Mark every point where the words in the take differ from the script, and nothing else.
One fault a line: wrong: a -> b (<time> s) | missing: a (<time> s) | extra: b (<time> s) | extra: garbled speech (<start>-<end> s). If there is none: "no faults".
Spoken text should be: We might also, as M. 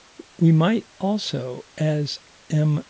no faults